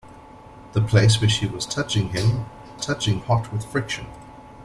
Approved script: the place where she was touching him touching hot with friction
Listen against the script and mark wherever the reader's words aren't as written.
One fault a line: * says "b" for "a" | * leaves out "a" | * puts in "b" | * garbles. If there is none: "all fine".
all fine